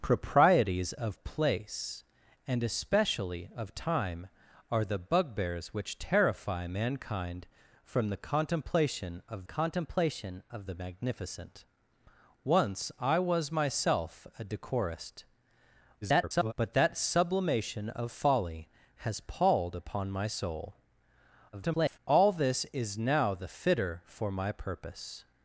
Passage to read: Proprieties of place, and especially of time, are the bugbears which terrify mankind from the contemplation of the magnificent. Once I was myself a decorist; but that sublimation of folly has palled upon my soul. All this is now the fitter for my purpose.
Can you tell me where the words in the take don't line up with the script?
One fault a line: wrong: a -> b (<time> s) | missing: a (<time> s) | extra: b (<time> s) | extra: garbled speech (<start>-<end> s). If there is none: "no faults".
extra: contemplation of (9.4 s)
extra: garbled speech (16.0-16.5 s)
extra: garbled speech (21.5-22.0 s)